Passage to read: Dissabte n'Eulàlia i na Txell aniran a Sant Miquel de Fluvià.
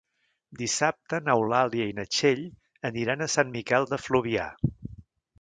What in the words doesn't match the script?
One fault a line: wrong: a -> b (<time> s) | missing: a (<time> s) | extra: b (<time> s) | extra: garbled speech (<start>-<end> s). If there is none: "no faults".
no faults